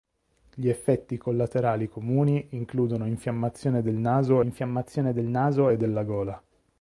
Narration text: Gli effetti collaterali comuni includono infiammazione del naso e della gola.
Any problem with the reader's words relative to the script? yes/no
yes